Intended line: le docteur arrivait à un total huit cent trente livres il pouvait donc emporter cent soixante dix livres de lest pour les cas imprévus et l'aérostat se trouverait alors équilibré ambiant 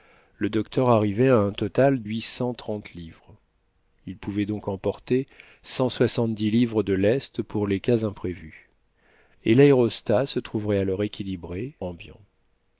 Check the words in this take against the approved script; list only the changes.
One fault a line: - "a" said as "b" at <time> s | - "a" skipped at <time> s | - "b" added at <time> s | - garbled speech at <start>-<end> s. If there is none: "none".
none